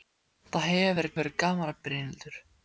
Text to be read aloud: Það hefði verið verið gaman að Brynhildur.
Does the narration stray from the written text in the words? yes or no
no